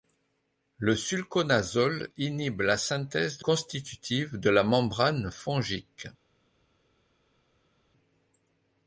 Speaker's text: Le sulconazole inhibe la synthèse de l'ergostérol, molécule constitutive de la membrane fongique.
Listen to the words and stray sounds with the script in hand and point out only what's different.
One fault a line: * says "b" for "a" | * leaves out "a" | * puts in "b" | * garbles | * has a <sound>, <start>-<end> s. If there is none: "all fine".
* leaves out "l'ergostérol molécule"